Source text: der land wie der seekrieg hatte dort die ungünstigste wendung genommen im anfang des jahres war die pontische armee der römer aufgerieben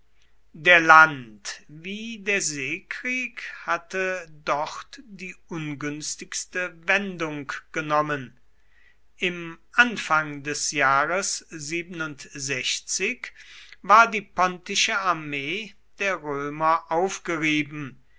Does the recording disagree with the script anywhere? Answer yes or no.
no